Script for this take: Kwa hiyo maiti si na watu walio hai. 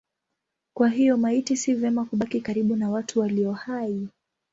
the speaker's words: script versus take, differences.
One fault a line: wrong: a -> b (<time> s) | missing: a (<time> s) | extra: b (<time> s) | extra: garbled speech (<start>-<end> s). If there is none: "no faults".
extra: vema kubaki karibu (1.7 s)